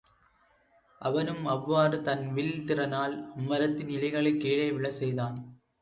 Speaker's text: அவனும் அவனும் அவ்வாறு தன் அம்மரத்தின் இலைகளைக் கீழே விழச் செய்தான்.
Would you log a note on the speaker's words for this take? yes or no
yes